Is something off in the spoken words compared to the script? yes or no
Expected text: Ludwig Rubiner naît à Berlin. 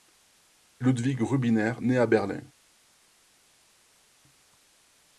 no